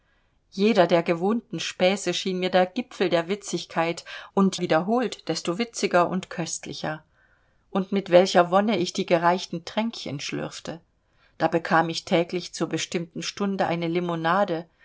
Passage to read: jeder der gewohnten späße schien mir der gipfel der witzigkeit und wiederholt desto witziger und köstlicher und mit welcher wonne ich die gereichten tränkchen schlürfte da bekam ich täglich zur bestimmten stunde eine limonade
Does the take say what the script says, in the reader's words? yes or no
yes